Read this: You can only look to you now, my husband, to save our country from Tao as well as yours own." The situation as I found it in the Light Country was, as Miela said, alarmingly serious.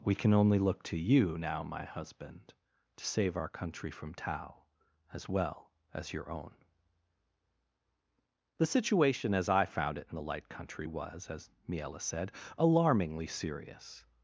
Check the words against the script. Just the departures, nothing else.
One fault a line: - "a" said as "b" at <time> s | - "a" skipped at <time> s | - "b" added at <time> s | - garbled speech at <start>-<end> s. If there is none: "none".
- "You" said as "We" at 0.0 s
- "yours" said as "your" at 6.1 s